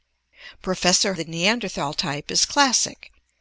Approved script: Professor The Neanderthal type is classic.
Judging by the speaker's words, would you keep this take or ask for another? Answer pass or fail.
pass